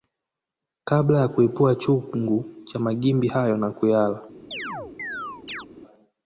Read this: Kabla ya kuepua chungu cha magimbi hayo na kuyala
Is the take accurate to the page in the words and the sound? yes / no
no